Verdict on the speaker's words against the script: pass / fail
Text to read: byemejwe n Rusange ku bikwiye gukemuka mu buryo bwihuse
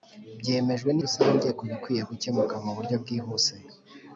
pass